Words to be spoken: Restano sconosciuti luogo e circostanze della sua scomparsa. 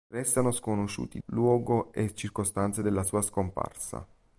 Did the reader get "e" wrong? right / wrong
right